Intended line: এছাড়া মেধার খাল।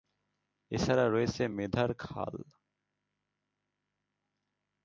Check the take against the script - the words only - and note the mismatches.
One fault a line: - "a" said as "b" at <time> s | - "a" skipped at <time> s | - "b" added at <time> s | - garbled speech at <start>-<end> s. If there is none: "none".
- "রয়েছে" added at 1.1 s